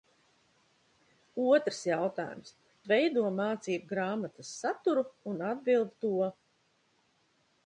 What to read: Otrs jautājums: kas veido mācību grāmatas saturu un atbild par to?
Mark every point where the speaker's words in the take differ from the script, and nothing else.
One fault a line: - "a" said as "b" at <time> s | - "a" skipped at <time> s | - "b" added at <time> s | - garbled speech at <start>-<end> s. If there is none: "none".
- "kas" skipped at 2.5 s
- "par" skipped at 5.9 s